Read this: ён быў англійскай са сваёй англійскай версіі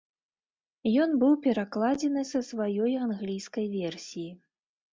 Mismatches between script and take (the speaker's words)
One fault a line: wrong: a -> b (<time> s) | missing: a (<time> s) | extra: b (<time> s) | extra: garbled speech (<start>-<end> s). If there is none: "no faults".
wrong: англійскай -> перакладзены (1.5 s)